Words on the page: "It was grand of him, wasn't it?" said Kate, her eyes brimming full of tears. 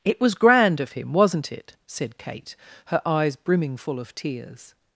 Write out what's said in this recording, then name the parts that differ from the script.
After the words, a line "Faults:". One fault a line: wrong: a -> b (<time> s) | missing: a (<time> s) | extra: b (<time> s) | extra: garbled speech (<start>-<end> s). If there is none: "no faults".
"It was grand of him, wasn't it?" said Kate, her eyes brimming full of tears.
Faults:
no faults